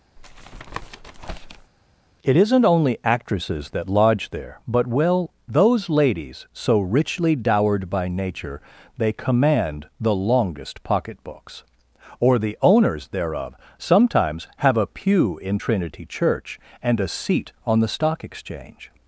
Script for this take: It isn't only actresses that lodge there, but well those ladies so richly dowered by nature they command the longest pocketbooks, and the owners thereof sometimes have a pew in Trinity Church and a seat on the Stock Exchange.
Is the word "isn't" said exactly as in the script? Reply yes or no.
yes